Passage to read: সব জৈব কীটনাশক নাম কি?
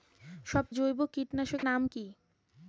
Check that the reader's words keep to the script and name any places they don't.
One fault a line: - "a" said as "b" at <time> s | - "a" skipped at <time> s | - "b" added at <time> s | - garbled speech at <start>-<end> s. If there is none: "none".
none